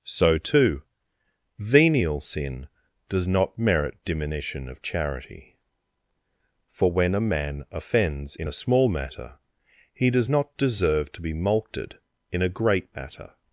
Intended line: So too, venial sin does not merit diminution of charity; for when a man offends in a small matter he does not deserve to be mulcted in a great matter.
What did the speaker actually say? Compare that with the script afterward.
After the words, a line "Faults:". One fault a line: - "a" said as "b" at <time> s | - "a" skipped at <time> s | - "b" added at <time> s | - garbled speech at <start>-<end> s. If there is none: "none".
So too, venial sin does not merit diminution of charity; for when a man offends in a small matter he does not deserve to be mulcted in a great matter.
Faults:
none